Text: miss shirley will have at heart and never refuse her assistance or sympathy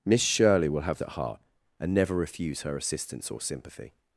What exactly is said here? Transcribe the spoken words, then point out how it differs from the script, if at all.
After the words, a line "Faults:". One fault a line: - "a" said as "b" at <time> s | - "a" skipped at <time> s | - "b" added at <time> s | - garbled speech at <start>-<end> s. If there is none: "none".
miss shirley will have at heart and never refuse her assistance or sympathy
Faults:
none